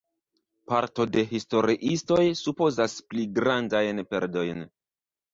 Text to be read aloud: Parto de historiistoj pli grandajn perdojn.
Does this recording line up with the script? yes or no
no